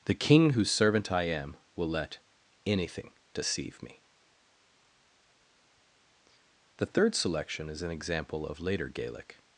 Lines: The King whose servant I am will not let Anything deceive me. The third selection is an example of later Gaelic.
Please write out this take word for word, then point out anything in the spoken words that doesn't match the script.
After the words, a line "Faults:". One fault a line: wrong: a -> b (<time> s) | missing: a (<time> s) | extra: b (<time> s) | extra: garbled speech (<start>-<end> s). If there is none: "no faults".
The King whose servant I am will let Anything deceive me. The third selection is an example of later Gaelic.
Faults:
missing: not (1.9 s)